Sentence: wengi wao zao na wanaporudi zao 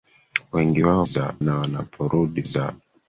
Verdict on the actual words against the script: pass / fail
pass